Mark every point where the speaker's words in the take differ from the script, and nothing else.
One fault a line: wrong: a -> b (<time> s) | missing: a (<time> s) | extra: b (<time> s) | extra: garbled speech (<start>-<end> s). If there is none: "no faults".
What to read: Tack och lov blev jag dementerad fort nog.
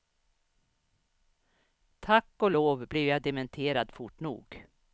no faults